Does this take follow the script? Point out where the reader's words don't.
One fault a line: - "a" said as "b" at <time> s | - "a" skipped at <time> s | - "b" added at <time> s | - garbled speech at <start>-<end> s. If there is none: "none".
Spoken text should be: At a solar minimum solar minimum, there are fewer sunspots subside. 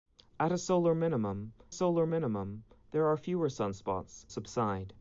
none